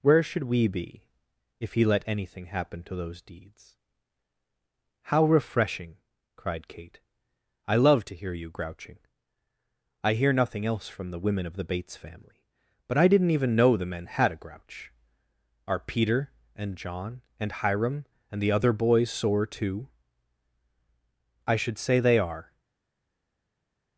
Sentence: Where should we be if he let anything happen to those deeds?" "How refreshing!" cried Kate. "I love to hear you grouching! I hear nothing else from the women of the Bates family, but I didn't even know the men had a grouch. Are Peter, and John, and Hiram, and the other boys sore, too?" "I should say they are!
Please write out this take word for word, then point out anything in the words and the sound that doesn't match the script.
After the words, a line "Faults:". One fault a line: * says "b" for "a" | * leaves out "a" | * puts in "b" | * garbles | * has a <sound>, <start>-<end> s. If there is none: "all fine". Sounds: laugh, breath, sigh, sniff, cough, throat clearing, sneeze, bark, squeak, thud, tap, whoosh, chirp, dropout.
Where should we be if he let anything happen to those deeds?" "How refreshing!" cried Kate. "I love to hear you grouching! I hear nothing else from the women of the Bates family, but I didn't even know the men had a grouch. Are Peter, and John, and Hiram, and the other boys sore, too?" "I should say they are!
Faults:
all fine